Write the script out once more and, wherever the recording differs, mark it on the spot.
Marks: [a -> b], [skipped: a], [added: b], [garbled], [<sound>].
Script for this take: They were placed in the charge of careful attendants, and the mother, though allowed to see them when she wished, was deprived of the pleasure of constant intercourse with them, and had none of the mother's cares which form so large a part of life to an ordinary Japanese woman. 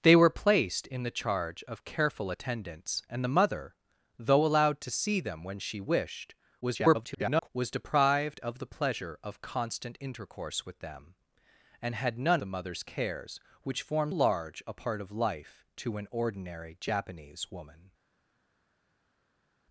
They were placed in the charge of careful attendants, and the mother, though allowed to see them when she wished, [garbled] was deprived of the pleasure of constant intercourse with them, and had none [skipped: of] the mother's cares which form [skipped: so] large a part of life to an ordinary Japanese woman.